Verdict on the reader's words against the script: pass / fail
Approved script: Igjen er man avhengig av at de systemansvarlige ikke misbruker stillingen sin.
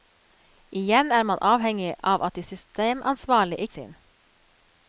fail